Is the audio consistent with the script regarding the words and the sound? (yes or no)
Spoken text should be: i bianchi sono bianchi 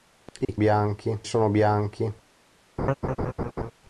no